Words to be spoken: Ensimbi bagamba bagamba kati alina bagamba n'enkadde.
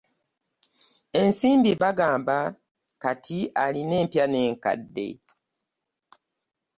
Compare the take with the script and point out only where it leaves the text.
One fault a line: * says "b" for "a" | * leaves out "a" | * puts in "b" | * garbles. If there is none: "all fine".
* leaves out "bagamba"
* says "empya" for "bagamba"